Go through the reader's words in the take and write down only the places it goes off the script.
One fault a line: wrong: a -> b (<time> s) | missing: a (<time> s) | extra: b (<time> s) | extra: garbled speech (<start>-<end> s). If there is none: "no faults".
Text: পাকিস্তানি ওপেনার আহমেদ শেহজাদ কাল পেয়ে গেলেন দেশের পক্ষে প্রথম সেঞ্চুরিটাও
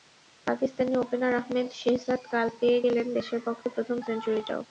no faults